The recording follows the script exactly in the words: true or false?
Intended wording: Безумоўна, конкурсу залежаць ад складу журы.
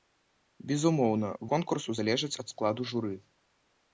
true